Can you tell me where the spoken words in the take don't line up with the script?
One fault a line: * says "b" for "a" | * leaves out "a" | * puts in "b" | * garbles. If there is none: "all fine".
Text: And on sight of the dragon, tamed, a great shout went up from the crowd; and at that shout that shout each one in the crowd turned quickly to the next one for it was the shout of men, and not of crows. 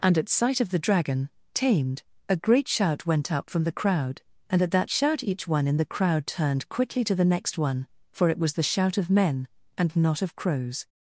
* says "at" for "on"
* leaves out "that shout"